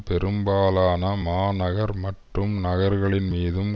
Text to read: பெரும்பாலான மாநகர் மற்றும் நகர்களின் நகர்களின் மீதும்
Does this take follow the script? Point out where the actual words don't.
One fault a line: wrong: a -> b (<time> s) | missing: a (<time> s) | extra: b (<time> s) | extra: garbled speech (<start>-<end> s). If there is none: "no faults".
missing: நகர்களின் (3.3 s)